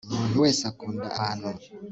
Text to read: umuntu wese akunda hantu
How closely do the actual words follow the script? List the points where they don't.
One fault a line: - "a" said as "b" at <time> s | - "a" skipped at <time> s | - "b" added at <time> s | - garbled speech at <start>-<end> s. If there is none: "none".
none